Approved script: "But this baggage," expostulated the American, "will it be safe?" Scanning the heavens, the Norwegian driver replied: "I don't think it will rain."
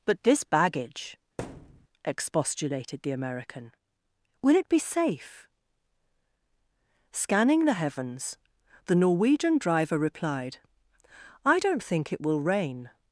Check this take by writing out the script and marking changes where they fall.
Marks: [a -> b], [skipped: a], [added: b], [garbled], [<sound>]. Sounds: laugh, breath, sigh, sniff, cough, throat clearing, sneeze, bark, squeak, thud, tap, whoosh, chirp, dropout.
"But this baggage," [thud] expostulated the American, "will it be safe?" Scanning the heavens, the Norwegian driver replied: "I don't think it will rain."